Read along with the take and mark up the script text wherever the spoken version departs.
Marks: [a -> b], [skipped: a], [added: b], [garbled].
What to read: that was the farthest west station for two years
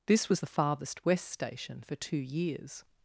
[that -> this] was the farthest west station for two years